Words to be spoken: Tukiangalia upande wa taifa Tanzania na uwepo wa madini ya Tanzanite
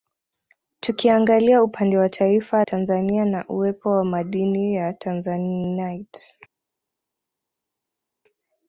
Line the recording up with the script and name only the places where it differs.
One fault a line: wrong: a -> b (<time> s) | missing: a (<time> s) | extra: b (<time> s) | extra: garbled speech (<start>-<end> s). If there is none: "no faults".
no faults